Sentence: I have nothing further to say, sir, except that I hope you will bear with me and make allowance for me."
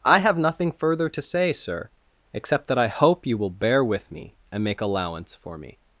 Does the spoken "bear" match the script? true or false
true